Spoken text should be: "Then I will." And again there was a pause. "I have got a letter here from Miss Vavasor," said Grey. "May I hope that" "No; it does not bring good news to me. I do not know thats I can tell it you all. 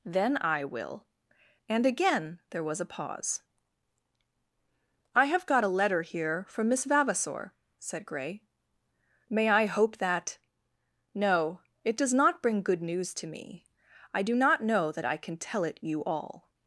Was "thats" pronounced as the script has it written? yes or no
no